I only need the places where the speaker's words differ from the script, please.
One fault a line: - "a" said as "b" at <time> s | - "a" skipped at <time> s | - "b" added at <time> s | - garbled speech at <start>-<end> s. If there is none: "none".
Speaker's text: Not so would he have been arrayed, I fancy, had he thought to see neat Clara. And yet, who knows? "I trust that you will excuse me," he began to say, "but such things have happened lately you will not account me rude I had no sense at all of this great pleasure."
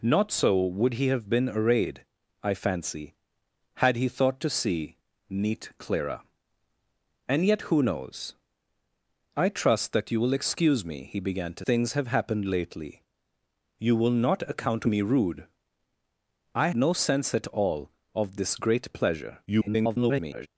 - "say but such" skipped at 11.7 s
- "had" skipped at 16.7 s
- garbled speech at 19.5-20.5 s